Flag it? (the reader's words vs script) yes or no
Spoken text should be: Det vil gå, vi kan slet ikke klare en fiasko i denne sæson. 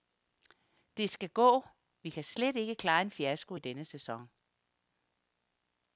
yes